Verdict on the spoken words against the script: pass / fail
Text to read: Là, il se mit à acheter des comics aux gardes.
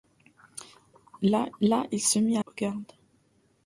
fail